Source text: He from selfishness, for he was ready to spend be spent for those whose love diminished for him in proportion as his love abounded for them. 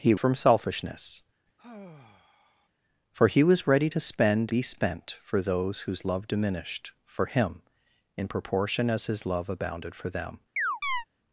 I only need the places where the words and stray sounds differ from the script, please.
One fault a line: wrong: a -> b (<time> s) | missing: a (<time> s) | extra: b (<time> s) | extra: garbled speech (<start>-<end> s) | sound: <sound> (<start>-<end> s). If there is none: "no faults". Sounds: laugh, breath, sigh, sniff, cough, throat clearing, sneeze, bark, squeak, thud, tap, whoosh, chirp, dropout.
sound: sigh (1.6-2.7 s)
sound: chirp (10.6-11.0 s)